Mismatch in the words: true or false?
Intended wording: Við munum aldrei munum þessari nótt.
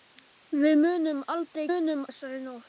false